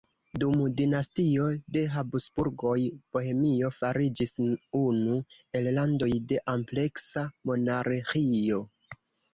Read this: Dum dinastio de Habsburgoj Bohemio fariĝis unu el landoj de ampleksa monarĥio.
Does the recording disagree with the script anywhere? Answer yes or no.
no